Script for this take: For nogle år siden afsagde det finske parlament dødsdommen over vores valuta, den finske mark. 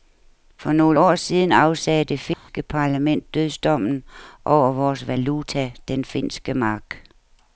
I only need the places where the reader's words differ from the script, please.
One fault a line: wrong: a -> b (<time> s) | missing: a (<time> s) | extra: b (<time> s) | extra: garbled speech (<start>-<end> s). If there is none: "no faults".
no faults